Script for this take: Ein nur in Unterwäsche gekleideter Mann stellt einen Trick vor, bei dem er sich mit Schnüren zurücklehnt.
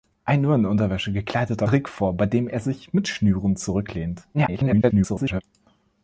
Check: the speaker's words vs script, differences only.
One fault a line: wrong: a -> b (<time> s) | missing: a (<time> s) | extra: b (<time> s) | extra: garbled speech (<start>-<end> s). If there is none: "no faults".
missing: Mann stellt einen (1.7 s)
extra: garbled speech (4.3-5.4 s)